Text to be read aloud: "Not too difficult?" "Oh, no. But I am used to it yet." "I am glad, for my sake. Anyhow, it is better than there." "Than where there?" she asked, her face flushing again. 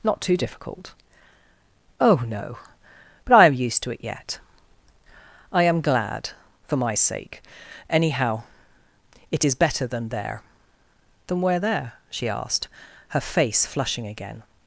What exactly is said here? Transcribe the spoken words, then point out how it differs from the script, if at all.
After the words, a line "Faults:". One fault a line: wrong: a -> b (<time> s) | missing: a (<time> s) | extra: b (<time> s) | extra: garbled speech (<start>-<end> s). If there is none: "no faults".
"Not too difficult?" "Oh, no. But I am used to it yet." "I am glad, for my sake. Anyhow, it is better than there." "Than where there?" she asked, her face flushing again.
Faults:
no faults